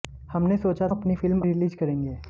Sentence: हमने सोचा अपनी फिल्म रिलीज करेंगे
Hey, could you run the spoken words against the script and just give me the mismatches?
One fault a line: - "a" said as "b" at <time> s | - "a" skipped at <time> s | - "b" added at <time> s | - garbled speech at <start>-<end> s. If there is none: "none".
none